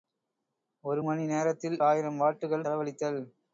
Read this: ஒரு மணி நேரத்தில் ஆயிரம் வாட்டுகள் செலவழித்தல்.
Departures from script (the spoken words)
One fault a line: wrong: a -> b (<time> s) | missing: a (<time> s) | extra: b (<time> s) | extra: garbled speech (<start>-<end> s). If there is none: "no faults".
no faults